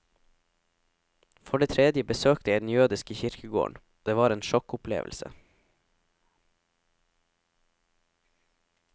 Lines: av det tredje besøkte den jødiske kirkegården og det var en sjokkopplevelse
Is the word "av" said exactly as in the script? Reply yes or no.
no